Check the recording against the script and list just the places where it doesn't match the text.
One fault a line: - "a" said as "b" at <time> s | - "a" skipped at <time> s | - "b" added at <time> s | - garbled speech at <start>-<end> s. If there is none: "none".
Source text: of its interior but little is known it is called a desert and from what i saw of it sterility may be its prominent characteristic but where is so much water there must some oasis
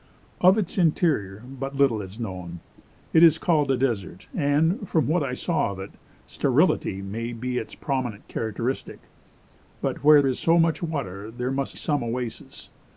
none